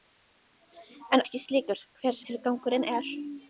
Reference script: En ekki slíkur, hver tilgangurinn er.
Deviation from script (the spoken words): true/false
false